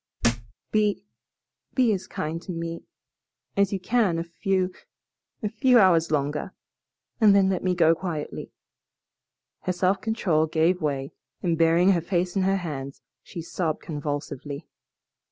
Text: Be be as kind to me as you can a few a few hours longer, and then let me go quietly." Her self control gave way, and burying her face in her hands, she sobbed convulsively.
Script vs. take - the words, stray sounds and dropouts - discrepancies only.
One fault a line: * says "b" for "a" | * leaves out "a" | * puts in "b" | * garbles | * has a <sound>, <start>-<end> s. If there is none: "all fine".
* has a thud, 0.2-0.5 s